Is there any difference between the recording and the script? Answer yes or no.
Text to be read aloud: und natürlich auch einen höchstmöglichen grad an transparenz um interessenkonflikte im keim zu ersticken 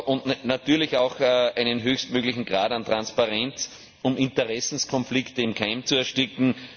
no